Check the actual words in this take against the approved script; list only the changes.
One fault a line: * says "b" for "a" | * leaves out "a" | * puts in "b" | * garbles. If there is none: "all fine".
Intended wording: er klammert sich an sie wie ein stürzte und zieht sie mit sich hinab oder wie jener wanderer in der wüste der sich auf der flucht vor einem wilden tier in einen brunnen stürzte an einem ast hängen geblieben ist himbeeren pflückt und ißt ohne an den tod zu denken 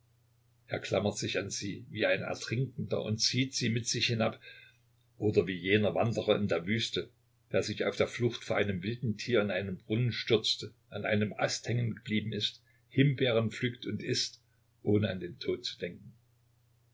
* says "ertrinkender" for "stürzte"